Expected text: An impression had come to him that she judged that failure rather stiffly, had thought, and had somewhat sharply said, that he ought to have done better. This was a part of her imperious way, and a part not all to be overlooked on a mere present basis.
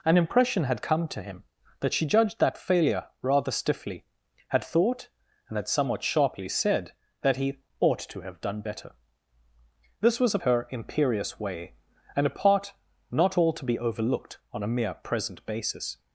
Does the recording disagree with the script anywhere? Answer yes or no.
yes